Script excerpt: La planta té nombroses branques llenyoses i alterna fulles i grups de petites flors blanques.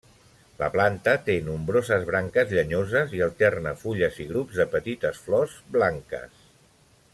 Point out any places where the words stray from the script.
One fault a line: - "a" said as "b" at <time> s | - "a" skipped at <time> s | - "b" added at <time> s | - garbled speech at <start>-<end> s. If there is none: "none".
none